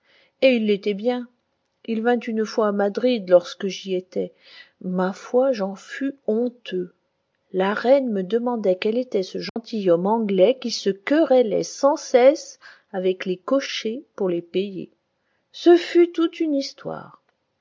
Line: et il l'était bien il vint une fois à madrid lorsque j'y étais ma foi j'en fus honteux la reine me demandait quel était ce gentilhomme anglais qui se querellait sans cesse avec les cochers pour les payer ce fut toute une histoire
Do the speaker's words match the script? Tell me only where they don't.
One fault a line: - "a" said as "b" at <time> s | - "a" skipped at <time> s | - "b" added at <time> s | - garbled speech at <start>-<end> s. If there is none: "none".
none